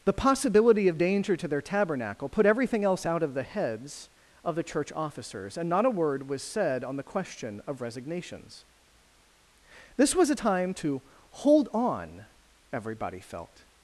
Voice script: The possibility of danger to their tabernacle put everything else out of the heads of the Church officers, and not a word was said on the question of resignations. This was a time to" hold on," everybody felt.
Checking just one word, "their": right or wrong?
right